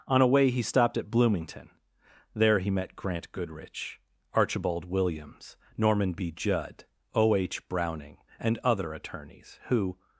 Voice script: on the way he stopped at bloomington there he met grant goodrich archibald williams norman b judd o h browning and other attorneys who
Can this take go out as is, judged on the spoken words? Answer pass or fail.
fail